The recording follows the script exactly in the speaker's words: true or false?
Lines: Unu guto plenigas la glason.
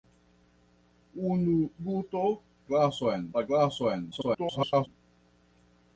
false